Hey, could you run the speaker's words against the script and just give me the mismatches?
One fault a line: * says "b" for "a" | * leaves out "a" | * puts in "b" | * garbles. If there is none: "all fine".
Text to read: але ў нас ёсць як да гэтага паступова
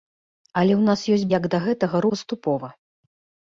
all fine